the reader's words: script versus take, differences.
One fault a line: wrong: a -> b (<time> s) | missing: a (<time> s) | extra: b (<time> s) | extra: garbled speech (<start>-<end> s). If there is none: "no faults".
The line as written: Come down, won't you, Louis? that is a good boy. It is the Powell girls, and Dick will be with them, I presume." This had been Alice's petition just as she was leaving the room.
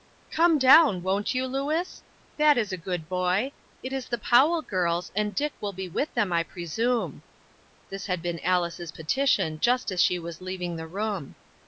no faults